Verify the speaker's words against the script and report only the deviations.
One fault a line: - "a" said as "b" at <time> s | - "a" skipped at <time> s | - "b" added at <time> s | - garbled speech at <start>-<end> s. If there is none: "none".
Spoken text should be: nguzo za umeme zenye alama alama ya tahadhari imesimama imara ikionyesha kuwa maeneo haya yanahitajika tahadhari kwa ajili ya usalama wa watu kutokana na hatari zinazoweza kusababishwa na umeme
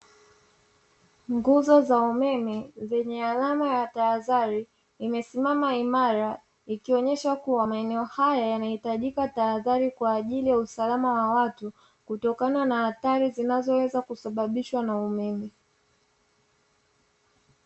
- "alama" skipped at 3.7 s